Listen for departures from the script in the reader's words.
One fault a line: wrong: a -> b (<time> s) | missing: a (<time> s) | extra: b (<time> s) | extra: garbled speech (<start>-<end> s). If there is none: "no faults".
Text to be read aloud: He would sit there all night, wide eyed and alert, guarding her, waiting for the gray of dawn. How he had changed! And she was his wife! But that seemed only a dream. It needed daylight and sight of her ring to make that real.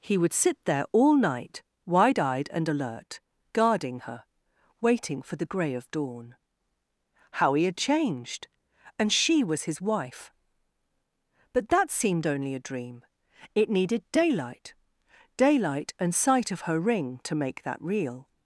extra: daylight (15.4 s)